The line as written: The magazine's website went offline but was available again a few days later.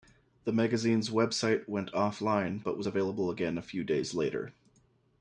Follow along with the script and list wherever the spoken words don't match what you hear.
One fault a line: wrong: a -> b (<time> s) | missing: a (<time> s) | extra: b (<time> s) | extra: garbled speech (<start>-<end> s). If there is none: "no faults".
no faults